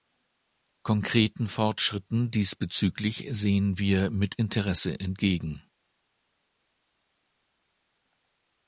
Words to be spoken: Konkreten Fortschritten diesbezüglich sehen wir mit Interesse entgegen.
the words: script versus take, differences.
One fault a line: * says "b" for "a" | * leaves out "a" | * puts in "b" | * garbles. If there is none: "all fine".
all fine